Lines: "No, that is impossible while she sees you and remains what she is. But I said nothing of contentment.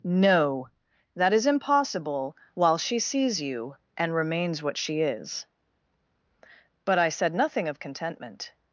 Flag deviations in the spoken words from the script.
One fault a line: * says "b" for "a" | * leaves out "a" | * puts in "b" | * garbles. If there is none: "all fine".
all fine